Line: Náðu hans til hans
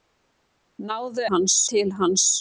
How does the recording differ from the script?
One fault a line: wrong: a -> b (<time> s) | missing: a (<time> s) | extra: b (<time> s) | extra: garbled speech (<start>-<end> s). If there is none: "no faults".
no faults